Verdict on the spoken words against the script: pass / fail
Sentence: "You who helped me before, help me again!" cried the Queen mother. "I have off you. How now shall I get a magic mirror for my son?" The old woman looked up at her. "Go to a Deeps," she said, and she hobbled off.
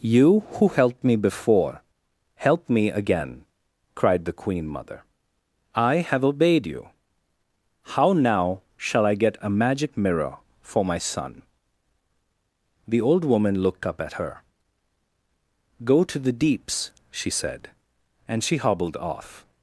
fail